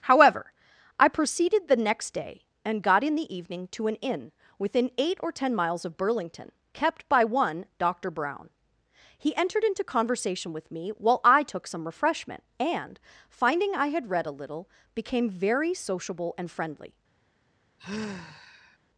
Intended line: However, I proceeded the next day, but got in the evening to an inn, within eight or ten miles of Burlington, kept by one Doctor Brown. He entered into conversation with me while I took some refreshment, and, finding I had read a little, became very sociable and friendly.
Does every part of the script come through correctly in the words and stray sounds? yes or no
no